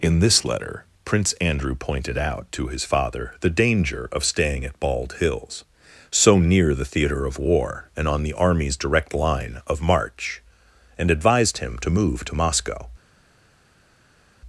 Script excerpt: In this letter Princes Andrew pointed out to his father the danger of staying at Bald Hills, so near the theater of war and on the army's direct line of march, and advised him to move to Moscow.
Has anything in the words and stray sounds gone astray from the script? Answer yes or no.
yes